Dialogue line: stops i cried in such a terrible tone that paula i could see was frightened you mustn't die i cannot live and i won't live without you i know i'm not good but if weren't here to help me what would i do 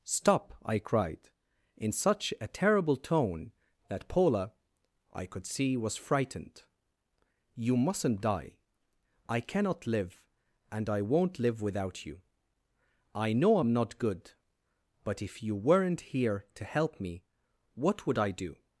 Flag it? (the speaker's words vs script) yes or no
yes